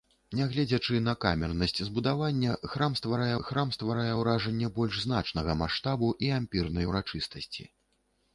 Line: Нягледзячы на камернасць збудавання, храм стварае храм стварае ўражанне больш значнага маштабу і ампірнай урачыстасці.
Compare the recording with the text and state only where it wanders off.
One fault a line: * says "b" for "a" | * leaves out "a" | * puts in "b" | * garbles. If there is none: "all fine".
all fine